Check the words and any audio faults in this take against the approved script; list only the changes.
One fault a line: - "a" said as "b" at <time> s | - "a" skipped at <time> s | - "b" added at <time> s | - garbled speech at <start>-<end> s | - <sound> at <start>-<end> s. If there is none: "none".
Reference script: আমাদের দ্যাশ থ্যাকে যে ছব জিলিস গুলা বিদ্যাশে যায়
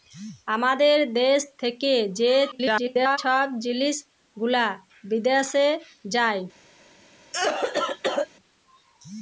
- garbled speech at 2.5-3.2 s
- cough at 7.3-8.3 s